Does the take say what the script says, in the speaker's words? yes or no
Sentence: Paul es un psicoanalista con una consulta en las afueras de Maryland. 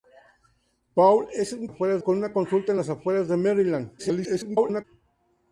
no